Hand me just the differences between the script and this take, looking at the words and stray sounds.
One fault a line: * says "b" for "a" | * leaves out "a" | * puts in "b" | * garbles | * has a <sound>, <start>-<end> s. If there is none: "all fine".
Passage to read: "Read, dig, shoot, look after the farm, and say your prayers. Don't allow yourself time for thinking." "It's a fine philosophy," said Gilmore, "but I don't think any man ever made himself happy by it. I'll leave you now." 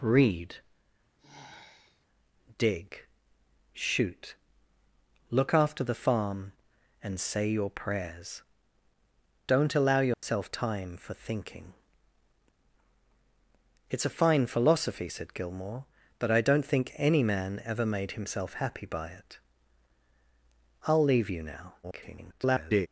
* has a sigh, 1.2-2.1 s
* has a dropout, 10.1-10.2 s
* garbles